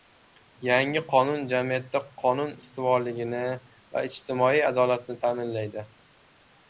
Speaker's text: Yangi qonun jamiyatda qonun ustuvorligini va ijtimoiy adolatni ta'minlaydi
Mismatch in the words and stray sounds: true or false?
false